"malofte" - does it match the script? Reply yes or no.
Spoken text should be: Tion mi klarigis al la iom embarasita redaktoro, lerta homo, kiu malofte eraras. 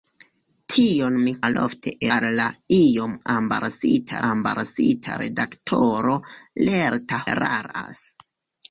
no